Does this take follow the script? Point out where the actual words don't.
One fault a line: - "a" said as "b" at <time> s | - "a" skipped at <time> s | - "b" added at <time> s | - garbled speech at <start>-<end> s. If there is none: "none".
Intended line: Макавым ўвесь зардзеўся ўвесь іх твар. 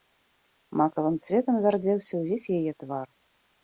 - "ўвесь" said as "цветам" at 1.3 s
- "іх" said as "яе" at 2.6 s